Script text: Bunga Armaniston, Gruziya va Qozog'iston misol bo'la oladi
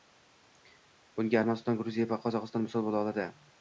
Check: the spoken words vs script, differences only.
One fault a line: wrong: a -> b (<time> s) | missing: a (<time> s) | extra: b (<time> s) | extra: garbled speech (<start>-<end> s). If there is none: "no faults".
no faults